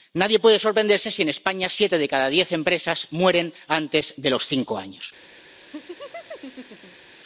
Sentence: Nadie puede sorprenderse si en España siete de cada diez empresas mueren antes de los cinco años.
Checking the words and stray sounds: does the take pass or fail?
fail